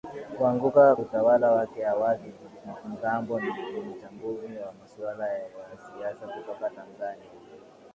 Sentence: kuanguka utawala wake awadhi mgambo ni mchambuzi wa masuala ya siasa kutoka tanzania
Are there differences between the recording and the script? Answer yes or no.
no